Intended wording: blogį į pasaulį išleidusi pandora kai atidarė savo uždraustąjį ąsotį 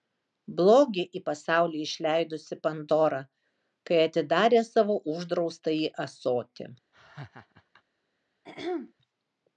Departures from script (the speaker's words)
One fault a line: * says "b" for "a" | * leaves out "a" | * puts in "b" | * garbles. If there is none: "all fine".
all fine